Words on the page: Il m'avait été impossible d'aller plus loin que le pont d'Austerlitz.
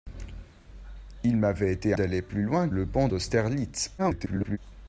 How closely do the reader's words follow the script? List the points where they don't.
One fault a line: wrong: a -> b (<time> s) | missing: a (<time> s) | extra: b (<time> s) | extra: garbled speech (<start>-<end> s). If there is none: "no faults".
missing: impossible (1.9 s)
missing: que (2.7 s)
extra: garbled speech (4.0-4.6 s)